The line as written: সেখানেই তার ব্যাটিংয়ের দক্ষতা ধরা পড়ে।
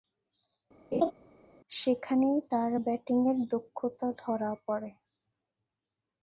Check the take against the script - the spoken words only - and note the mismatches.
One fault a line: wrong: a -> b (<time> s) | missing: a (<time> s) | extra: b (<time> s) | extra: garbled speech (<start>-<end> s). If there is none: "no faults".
no faults